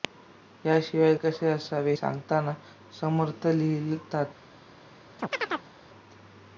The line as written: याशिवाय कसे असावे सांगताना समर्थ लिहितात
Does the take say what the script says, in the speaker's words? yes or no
yes